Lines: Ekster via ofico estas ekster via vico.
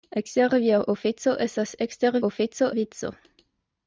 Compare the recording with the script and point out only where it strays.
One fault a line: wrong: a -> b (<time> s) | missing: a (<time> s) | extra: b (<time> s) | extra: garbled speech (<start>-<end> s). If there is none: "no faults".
wrong: via -> ofico (2.3 s)